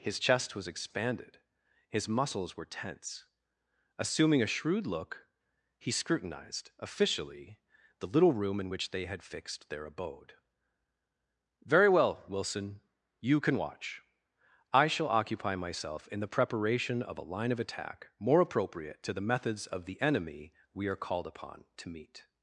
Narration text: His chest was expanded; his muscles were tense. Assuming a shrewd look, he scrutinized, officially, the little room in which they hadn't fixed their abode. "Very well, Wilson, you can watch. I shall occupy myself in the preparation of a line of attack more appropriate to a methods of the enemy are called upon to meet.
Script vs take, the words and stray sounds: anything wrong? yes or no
yes